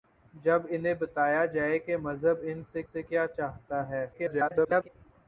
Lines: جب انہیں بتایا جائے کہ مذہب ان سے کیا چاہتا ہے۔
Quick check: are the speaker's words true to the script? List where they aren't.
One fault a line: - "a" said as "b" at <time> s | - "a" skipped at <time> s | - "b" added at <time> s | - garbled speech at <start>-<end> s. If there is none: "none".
- "سے" added at 2.8 s
- garbled speech at 4.1-4.9 s